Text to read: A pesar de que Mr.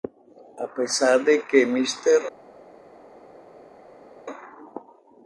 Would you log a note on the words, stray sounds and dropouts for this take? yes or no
no